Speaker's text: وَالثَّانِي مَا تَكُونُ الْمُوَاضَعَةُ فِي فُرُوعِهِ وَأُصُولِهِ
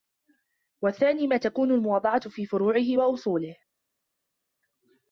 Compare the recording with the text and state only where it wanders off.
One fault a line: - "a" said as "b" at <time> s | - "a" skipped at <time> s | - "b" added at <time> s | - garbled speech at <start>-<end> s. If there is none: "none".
none